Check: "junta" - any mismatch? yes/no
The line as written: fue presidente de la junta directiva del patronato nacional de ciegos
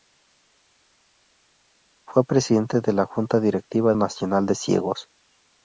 no